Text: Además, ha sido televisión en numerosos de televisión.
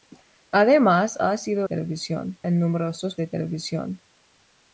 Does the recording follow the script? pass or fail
pass